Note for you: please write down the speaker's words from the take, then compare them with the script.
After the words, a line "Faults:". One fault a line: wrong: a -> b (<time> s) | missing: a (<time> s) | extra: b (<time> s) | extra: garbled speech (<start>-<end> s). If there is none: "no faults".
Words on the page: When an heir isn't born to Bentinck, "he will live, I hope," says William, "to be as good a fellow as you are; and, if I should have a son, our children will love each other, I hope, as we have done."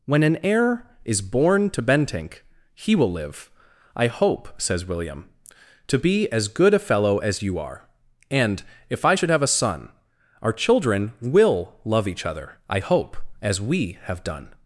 When an heir is born to Bentinck, "he will live, I hope," says William, "to be as good a fellow as you are; and, if I should have a son, our children will love each other, I hope, as we have done."
Faults:
wrong: isn't -> is (1.1 s)